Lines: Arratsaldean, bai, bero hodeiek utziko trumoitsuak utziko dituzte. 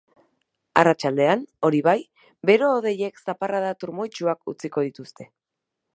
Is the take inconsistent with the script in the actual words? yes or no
yes